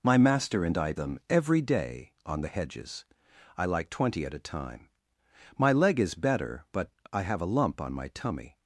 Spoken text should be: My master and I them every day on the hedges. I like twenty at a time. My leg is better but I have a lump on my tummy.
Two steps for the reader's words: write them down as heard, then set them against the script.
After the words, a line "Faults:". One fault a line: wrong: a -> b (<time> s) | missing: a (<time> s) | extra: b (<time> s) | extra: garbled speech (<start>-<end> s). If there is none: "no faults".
My master and I them every day on the hedges. I like twenty at a time. My leg is better but I have a lump on my tummy.
Faults:
no faults